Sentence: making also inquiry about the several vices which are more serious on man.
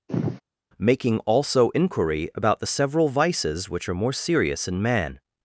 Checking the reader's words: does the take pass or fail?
fail